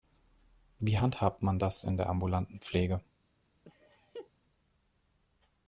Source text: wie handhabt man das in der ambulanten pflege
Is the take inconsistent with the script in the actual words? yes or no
no